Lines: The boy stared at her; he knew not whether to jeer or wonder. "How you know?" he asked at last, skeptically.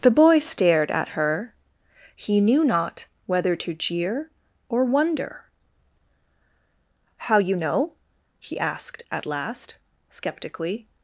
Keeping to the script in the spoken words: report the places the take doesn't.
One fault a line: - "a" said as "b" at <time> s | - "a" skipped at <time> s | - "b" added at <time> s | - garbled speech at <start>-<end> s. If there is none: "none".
none